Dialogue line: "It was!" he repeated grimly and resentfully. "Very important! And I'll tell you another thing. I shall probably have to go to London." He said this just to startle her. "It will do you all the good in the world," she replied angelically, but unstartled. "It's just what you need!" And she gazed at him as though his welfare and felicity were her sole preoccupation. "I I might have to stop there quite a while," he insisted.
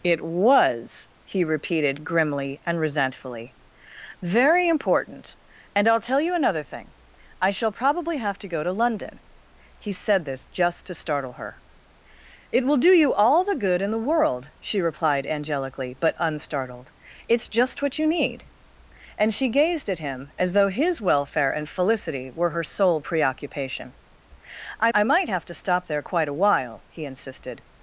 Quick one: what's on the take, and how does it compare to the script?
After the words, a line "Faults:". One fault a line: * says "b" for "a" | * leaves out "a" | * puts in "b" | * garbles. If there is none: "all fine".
"It was!" he repeated grimly and resentfully. "Very important! And I'll tell you another thing. I shall probably have to go to London." He said this just to startle her. "It will do you all the good in the world," she replied angelically, but unstartled. "It's just what you need!" And she gazed at him as though his welfare and felicity were her sole preoccupation. "I I might have to stop there quite a while," he insisted.
Faults:
all fine